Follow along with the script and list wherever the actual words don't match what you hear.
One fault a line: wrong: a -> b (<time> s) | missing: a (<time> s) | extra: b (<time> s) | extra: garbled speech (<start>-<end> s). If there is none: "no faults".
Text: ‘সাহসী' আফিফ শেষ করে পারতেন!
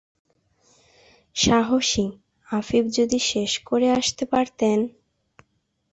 extra: যদি (3.0 s)
extra: আসতে (3.9 s)